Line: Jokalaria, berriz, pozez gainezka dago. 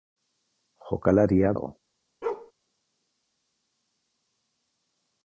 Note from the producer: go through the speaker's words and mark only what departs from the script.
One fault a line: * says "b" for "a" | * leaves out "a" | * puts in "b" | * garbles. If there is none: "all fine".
* leaves out "berriz pozez gainezka"